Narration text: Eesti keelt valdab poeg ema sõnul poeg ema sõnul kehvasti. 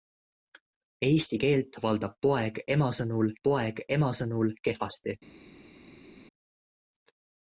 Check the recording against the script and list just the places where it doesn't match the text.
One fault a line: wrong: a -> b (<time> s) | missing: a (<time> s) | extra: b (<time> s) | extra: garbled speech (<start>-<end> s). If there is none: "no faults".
no faults